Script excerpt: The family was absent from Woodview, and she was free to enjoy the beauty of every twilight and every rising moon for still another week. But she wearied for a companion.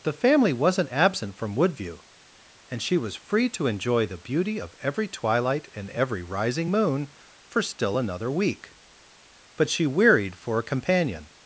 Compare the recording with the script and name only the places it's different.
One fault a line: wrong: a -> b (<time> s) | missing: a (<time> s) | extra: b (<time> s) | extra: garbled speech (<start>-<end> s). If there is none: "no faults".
wrong: was -> wasn't (0.5 s)